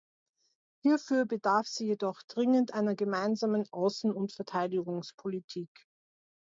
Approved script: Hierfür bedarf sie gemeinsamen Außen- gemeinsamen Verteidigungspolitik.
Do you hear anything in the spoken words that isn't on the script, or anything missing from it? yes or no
yes